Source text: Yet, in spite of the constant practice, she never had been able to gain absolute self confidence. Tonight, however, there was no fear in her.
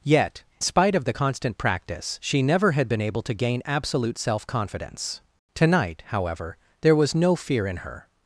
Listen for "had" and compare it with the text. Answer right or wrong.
right